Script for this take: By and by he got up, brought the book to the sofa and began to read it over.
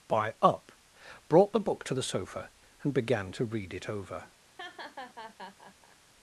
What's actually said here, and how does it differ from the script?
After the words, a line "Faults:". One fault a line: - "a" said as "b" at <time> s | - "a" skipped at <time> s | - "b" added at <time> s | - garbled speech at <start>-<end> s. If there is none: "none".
By up, brought the book to the sofa and began to read it over.
Faults:
- "and by he got" skipped at 0.3 s